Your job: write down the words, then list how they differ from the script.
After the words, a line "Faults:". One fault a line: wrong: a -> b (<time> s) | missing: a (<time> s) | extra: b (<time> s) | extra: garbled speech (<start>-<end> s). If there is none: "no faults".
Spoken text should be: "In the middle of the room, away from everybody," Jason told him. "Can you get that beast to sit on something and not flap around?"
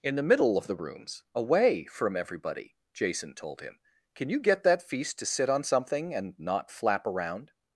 "In the middle of the rooms, away from everybody," Jason told him. "Can you get that feast to sit on something and not flap around?"
Faults:
wrong: room -> rooms (0.8 s)
wrong: beast -> feast (4.8 s)